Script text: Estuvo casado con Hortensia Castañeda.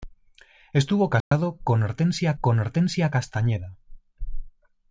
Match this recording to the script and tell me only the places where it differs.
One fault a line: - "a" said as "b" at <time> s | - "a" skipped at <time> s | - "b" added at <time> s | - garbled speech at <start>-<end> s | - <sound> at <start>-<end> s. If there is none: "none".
- dropout at 1.2-1.3 s
- "con Hortensia" added at 2.4 s